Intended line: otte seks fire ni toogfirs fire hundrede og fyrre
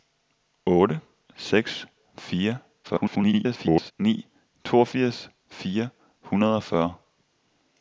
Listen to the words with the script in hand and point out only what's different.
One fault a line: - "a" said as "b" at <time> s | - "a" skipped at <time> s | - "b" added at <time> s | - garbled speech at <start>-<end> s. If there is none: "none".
- garbled speech at 2.8-3.9 s